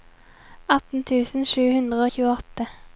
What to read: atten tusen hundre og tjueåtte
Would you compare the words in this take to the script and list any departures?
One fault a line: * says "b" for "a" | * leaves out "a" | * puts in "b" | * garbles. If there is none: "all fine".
* puts in "sju"